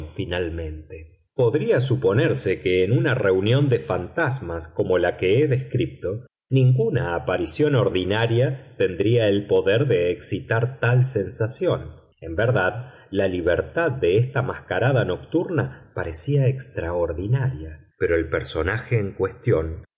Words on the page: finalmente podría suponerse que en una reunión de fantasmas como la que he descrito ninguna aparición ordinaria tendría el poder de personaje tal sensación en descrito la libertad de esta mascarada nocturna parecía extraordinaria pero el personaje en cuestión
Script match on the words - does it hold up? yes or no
no